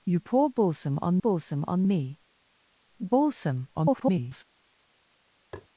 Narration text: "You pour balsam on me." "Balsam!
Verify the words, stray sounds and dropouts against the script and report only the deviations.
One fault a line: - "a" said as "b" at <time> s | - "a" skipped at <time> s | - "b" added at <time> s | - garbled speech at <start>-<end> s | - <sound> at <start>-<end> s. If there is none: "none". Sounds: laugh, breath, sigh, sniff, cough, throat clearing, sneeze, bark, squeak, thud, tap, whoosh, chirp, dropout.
- "balsam on" added at 1.2 s
- garbled speech at 3.8-4.4 s
- tap at 5.5-5.7 s